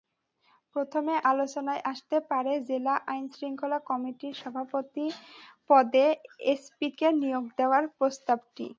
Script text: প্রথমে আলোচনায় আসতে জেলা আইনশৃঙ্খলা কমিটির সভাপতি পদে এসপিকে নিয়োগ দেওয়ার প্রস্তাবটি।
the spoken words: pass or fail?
fail